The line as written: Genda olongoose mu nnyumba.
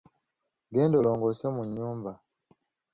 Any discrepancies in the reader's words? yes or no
no